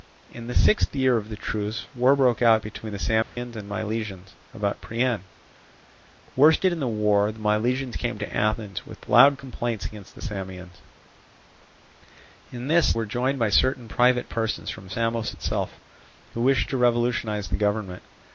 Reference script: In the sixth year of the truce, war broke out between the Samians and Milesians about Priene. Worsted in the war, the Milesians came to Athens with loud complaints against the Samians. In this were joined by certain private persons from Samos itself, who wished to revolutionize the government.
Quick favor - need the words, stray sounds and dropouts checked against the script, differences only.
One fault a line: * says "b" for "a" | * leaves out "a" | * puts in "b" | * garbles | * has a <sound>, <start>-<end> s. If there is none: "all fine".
* has a dropout, 3.2-3.4 s